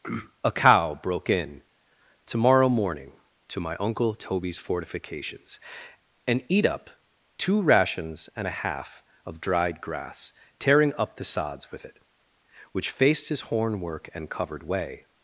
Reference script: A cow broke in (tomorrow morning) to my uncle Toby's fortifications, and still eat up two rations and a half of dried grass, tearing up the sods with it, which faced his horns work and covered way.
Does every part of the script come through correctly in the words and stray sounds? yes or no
no